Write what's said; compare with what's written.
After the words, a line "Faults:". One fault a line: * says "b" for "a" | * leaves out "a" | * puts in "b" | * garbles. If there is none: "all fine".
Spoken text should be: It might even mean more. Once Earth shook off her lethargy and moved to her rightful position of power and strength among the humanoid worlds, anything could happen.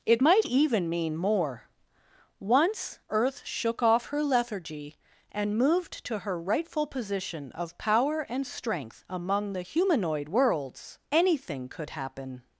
It might even mean more. Once Earth shook off her lethargy and moved to her rightful position of power and strength among the humanoid worlds, anything could happen.
Faults:
all fine